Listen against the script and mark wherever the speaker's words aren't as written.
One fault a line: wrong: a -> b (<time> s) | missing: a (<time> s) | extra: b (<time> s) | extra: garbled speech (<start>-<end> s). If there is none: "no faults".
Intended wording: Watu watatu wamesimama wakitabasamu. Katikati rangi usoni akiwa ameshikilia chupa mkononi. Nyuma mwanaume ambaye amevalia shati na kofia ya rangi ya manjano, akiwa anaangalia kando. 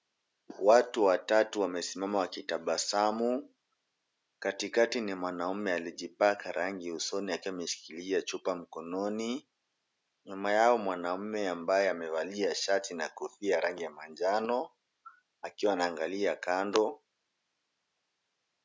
extra: ni mwanaume alijipaka (5.0 s)
extra: yao (10.5 s)